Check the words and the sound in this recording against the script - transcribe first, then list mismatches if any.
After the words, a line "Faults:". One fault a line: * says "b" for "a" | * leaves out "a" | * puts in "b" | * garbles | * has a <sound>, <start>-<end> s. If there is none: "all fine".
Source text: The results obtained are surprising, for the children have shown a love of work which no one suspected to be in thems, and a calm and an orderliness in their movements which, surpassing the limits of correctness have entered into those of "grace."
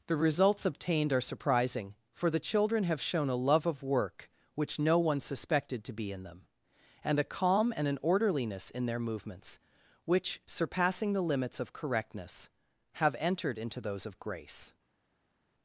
The results obtained are surprising, for the children have shown a love of work which no one suspected to be in them, and a calm and an orderliness in their movements which, surpassing the limits of correctness have entered into those of "grace."
Faults:
* says "them" for "thems"